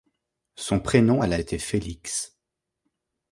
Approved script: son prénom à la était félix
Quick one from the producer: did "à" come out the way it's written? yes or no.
yes